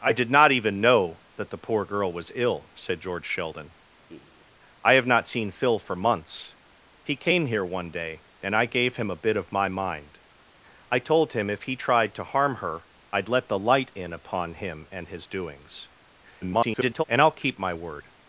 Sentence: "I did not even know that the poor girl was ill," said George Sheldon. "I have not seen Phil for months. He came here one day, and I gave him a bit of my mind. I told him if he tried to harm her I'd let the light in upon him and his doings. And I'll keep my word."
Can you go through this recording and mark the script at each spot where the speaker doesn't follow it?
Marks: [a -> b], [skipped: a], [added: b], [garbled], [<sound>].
"I did not even know that the poor girl was ill," said George Sheldon. [laugh] "I have not seen Phil for months. He came here one day, and I gave him a bit of my mind. I told him if he tried to harm her I'd let the light in upon him and his doings. [garbled] And I'll keep my word."